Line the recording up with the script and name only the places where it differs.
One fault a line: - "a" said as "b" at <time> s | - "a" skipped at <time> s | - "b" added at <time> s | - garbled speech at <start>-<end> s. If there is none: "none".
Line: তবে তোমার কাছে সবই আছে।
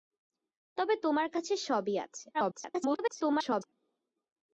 - garbled speech at 2.3-3.7 s